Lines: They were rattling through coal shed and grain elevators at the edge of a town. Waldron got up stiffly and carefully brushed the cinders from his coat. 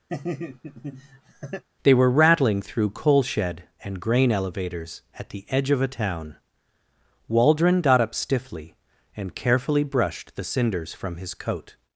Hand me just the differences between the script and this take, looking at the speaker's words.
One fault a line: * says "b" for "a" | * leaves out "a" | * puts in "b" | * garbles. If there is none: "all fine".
all fine